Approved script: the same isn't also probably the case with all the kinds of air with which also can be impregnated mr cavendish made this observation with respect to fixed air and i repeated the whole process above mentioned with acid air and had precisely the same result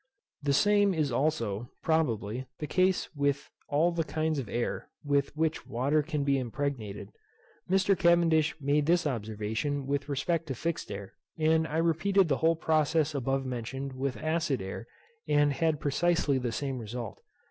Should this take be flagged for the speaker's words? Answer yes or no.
yes